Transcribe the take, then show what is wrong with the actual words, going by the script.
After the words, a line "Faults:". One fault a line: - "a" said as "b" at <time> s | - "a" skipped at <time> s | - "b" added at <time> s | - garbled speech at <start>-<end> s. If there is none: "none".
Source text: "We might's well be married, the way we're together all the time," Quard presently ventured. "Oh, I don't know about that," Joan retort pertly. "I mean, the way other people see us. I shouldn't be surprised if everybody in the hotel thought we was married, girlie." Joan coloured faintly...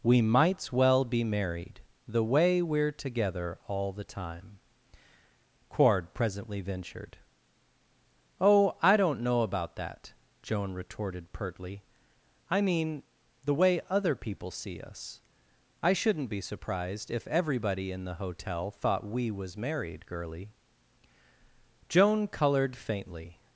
"We might's well be married, the way we're together all the time," Quard presently ventured. "Oh, I don't know about that," Joan retorted pertly. "I mean, the way other people see us. I shouldn't be surprised if everybody in the hotel thought we was married, girlie." Joan coloured faintly...
Faults:
- "retort" said as "retorted" at 10.7 s